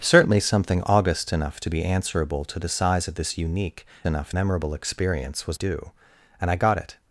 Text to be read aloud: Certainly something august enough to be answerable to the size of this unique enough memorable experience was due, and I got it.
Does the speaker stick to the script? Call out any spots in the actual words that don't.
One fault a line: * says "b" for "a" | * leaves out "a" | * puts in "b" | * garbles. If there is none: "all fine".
all fine